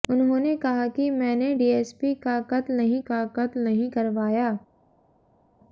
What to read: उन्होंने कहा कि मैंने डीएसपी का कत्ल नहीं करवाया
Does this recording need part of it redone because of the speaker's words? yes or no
yes